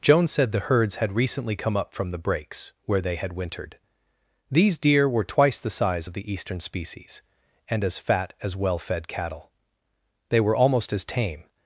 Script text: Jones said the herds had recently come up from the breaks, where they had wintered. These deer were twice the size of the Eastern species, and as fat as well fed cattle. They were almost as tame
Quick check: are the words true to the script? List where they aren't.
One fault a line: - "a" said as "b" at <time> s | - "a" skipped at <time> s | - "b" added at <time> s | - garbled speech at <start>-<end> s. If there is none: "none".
none